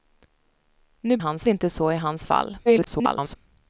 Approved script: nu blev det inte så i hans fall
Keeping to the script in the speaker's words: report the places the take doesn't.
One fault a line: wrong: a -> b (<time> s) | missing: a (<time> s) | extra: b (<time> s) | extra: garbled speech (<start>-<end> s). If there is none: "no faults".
wrong: blev -> hans (1.2 s)
extra: garbled speech (2.7-3.4 s)